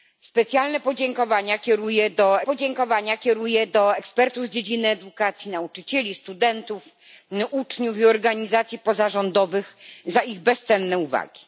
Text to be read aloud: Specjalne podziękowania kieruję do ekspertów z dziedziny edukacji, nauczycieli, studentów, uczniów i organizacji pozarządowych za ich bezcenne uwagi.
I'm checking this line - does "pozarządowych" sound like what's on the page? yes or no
yes